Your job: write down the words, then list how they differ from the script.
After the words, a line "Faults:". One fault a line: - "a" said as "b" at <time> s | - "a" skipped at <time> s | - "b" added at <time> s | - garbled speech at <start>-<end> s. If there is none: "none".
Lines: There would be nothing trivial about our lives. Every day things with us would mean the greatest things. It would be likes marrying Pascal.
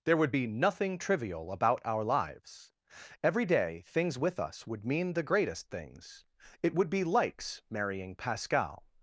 There would be nothing trivial about our lives. Every day things with us would mean the greatest things. It would be likes marrying Pascal.
Faults:
none